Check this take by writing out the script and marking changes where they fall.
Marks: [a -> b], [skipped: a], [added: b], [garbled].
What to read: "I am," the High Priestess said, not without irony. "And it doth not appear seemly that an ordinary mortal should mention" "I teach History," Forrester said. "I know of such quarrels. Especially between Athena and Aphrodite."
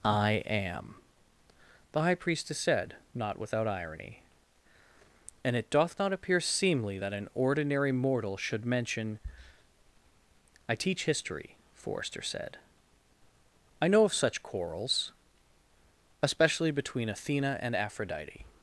"I am," the High Priestess said, not without irony. "And it doth not appear seemly that an ordinary mortal should mention" "I teach History," Forrester said. "I know of such quarrels. Especially between Athena and Aphrodite."